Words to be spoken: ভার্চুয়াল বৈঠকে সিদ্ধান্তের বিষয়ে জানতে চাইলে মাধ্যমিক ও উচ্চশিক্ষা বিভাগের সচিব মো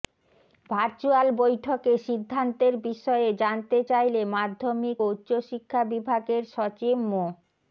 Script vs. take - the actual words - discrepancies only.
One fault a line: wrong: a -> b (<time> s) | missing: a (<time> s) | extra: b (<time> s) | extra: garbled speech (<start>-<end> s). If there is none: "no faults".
no faults